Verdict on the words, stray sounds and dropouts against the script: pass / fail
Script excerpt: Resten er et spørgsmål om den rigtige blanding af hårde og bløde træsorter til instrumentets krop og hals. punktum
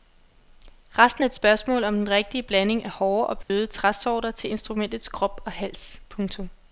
fail